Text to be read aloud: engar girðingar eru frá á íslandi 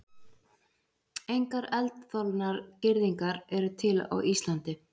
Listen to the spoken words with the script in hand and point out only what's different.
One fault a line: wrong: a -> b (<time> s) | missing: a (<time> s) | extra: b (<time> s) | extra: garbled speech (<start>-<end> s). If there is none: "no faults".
extra: eldþolnar (1.8 s)
wrong: frá -> til (3.8 s)